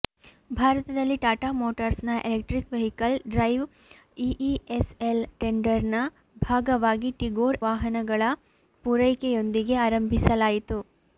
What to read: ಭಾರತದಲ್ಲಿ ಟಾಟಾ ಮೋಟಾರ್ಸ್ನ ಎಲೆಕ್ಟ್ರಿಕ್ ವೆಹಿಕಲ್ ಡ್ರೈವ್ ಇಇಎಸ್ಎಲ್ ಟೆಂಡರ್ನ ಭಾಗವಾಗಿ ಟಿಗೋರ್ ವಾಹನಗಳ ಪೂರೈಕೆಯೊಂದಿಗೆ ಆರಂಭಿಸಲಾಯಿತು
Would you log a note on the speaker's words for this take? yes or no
no